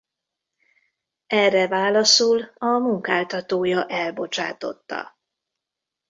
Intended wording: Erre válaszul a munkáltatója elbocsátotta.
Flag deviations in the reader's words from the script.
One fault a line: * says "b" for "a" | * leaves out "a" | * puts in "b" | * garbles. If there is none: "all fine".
all fine